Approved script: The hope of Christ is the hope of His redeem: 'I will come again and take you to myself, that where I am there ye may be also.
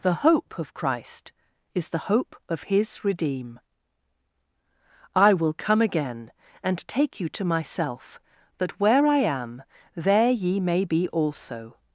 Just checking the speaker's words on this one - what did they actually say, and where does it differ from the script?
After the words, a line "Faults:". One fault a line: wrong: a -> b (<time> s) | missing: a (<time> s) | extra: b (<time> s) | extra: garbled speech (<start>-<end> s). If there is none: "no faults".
The hope of Christ is the hope of His redeem: 'I will come again and take you to myself, that where I am there ye may be also.
Faults:
no faults